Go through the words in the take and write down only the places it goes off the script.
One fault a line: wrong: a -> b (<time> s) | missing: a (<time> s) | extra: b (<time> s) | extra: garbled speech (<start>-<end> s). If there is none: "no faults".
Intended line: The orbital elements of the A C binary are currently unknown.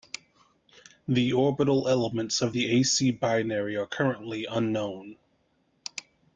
no faults